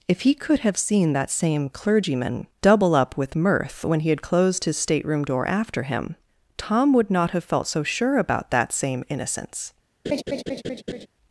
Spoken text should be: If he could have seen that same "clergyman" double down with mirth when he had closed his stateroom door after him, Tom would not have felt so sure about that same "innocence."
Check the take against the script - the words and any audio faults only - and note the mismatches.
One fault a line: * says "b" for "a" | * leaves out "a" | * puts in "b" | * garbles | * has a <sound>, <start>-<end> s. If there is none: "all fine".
* says "up" for "down"
* has a laugh, 10.0-11.1 s